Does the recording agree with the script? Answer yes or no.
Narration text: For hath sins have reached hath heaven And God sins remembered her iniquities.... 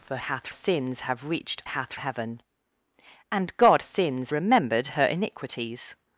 yes